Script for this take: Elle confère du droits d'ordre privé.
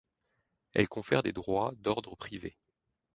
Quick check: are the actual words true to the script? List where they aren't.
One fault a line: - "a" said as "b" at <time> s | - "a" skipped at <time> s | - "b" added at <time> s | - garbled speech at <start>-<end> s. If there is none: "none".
- "du" said as "des" at 1.2 s